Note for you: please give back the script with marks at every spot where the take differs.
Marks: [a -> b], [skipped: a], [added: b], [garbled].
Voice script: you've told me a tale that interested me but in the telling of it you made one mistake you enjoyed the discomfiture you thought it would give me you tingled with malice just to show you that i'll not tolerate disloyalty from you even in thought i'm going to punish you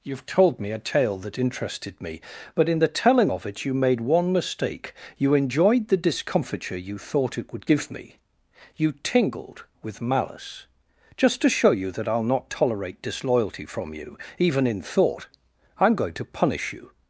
you've told me a tale that interested me but in the telling of it you made one mistake you enjoyed the discomfiture you thought it would give me you tingled with malice just to show you that i'll not tolerate disloyalty from you even in thought i'm going to punish you